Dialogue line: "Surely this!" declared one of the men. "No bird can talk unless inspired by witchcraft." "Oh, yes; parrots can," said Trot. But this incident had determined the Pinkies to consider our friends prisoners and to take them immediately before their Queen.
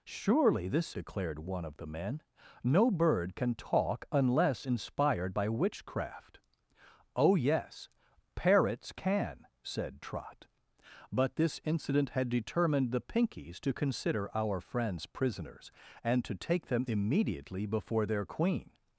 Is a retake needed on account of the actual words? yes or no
no